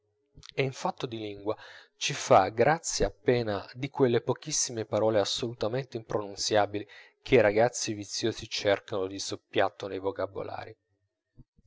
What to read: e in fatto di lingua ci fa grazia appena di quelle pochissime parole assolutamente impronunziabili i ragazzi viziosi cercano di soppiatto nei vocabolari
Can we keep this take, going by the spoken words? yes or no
no